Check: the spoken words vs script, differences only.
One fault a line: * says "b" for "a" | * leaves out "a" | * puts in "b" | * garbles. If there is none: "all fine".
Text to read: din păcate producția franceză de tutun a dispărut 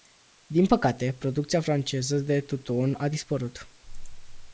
all fine